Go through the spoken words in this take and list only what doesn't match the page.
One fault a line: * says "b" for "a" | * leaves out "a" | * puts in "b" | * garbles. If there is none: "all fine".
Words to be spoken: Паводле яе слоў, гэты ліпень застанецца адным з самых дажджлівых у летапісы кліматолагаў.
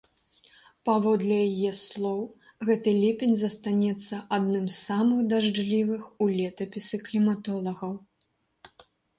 all fine